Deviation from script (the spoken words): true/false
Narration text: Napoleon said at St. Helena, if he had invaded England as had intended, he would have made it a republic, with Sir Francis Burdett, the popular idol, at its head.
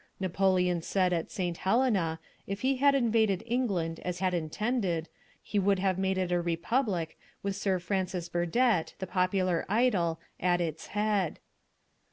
false